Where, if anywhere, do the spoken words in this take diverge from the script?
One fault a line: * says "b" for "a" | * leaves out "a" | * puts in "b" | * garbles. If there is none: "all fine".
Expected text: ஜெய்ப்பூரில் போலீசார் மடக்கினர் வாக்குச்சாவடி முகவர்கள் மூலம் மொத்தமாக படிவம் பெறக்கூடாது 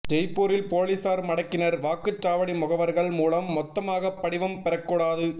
all fine